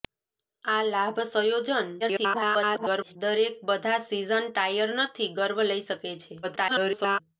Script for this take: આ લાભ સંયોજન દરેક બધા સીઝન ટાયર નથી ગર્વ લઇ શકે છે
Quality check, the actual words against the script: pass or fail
fail